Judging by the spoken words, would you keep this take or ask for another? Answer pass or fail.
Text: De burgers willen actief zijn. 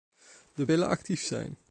fail